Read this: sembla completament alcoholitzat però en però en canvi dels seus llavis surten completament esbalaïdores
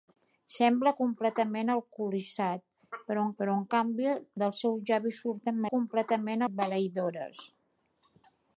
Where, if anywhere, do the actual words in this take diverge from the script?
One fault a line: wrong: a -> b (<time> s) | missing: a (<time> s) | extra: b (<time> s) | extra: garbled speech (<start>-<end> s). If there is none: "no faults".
no faults